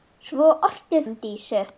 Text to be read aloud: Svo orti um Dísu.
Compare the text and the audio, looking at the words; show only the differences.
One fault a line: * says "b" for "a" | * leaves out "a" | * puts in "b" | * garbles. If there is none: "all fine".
all fine